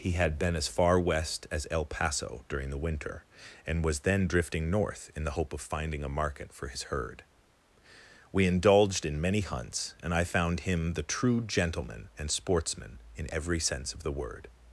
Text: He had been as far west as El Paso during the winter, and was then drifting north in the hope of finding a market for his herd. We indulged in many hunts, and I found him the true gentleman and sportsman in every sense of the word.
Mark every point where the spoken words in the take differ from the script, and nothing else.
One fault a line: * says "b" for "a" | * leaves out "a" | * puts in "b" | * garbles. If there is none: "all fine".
all fine